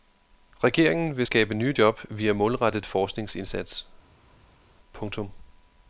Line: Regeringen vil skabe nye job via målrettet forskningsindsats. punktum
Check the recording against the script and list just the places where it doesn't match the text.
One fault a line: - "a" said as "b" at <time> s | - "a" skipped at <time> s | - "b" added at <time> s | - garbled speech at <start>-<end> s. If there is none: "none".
none